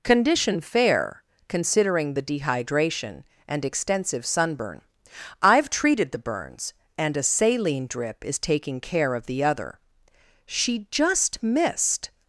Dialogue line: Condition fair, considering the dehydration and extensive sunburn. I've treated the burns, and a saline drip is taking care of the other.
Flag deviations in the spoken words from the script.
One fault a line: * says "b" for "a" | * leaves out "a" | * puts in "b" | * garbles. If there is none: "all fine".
* puts in "She just missed"